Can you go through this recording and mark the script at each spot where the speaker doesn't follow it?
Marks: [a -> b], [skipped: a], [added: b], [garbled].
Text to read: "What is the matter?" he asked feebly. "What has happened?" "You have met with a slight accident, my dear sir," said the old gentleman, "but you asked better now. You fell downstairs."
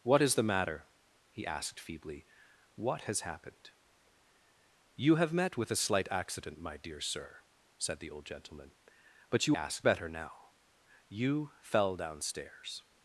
"What is the matter?" he asked feebly. "What has happened?" "You have met with a slight accident, my dear sir," said the old gentleman, "but you asked better now. You fell downstairs."